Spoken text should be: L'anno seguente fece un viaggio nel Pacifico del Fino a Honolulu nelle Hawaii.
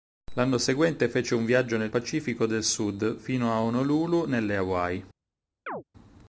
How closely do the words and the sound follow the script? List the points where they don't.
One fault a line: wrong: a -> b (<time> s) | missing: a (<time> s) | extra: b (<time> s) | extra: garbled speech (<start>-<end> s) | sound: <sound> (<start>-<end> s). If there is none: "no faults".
extra: Sud (2.7 s)
sound: chirp (5.7-5.8 s)